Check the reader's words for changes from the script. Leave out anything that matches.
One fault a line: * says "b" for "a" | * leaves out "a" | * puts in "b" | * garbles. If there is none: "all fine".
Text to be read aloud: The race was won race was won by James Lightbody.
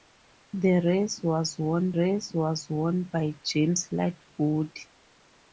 all fine